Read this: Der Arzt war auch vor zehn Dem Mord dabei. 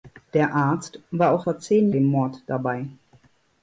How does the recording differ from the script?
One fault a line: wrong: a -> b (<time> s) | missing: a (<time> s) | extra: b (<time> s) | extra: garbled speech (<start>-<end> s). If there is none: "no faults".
no faults